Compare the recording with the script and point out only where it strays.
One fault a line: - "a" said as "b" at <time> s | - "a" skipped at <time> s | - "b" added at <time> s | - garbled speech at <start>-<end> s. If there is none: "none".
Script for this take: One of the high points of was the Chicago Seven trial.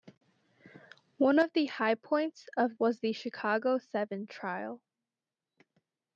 none